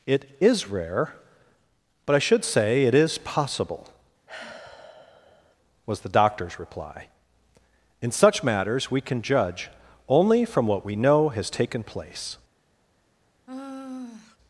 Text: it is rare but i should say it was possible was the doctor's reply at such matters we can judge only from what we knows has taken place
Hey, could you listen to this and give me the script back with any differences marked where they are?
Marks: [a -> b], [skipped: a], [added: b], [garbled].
it is rare but i should say it [was -> is] possible was the doctor's reply [at -> in] such matters we can judge only from what we [knows -> know] has taken place